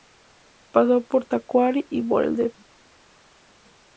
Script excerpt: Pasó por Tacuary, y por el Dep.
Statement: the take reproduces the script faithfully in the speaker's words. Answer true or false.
true